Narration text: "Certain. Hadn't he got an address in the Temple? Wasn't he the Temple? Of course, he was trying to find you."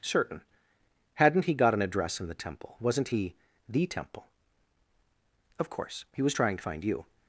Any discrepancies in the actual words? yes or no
no